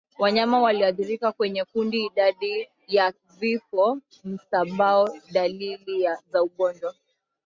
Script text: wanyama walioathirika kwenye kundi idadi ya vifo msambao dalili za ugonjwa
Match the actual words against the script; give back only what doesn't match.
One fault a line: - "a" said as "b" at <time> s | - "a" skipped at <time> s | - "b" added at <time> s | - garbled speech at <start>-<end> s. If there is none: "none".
none